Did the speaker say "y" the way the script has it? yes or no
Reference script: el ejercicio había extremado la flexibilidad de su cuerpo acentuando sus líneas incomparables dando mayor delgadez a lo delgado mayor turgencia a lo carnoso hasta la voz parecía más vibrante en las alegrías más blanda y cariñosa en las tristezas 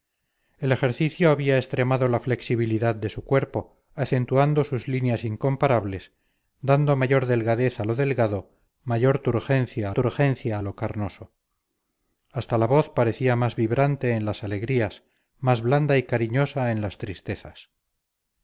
yes